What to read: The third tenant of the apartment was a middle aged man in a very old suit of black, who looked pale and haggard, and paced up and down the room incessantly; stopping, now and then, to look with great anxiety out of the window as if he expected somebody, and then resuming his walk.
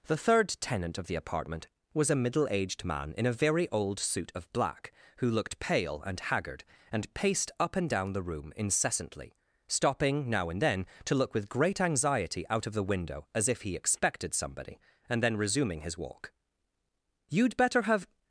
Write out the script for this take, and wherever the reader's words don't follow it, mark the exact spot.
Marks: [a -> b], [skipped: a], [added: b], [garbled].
The third tenant of the apartment was a middle aged man in a very old suit of black, who looked pale and haggard, and paced up and down the room incessantly; stopping, now and then, to look with great anxiety out of the window as if he expected somebody, and then resuming his walk. [added: You'd better have]